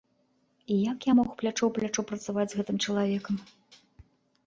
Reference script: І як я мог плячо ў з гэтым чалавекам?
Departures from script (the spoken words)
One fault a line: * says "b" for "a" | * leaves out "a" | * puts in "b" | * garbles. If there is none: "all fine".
* puts in "плячо працаваць"